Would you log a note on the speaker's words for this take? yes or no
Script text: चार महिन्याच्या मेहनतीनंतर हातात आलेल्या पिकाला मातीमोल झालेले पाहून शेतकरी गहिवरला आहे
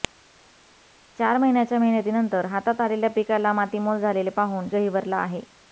yes